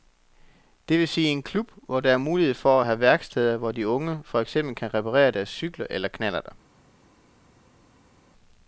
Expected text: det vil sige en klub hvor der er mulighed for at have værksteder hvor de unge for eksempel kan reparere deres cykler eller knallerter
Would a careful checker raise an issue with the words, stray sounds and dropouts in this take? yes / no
no